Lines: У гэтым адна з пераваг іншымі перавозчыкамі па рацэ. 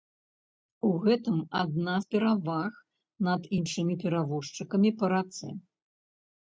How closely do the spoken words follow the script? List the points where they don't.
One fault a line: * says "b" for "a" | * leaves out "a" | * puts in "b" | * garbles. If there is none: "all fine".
* puts in "над"